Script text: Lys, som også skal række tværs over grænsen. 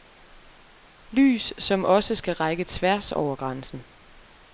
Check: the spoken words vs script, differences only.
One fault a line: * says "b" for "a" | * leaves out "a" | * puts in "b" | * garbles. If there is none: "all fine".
all fine